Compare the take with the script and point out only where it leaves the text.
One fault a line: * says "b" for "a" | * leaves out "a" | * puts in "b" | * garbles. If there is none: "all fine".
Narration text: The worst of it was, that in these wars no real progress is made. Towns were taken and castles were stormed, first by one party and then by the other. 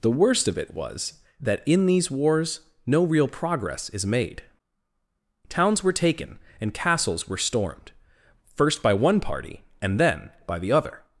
all fine